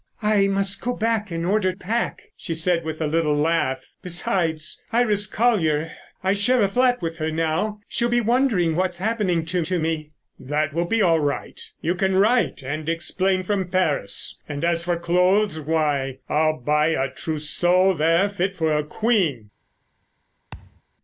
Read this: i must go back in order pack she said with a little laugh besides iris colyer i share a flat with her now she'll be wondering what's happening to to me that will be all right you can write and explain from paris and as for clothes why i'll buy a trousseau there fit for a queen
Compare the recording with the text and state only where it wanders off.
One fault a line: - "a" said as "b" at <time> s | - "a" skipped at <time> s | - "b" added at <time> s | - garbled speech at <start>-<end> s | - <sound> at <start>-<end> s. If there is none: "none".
- thud at 20.5-20.8 s